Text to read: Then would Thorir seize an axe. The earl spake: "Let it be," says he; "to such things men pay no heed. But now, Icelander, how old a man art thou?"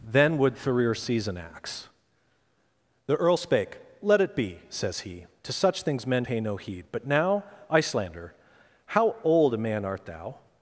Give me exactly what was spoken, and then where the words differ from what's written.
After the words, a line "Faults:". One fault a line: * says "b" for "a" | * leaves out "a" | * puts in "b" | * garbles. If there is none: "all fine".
Then would Thorir seize an axe. The earl spake: "Let it be," says he; "to such things men pay no heed. But now, Icelander, how old a man art thou?"
Faults:
all fine